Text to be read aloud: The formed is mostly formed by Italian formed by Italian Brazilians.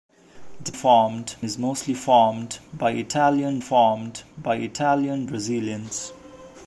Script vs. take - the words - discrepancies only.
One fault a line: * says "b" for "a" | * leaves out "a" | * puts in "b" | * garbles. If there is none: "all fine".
all fine